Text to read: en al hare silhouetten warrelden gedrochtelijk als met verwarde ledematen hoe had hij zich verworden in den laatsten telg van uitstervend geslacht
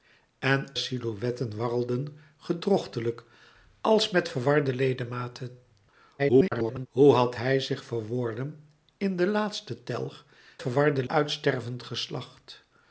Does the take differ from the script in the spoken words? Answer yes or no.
yes